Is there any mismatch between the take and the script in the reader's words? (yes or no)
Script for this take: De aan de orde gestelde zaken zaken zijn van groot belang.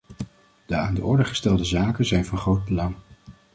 yes